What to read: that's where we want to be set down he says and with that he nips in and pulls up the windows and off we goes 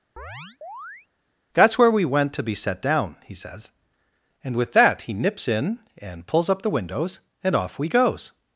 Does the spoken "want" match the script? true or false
false